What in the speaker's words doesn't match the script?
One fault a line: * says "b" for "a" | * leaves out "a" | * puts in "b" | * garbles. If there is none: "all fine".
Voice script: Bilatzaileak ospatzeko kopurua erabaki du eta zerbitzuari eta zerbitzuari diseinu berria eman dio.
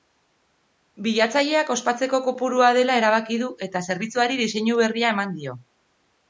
* puts in "dela"
* leaves out "eta zerbitzuari"